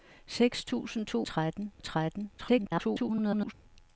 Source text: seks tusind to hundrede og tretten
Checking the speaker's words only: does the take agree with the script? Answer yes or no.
no